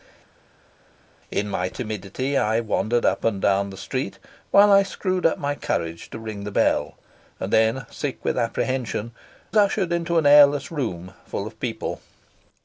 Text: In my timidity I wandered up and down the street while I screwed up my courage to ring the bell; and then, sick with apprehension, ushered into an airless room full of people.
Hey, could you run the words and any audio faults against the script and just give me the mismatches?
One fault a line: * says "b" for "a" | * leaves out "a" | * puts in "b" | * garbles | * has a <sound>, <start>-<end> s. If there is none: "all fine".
all fine